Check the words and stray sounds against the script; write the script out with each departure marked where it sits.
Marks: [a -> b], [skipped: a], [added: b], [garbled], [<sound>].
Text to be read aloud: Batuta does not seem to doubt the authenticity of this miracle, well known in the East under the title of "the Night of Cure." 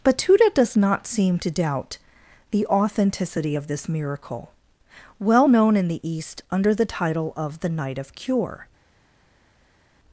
Batuta does not seem to doubt the authenticity of this miracle, well known in the East under the title of "the Night of Cure."